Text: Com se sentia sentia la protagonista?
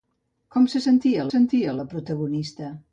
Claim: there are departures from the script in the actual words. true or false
false